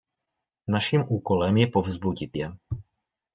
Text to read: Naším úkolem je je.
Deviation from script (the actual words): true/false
true